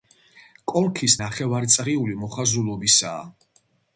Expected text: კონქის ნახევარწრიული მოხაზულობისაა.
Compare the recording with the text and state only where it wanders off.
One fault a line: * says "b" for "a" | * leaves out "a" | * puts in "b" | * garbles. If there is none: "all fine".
all fine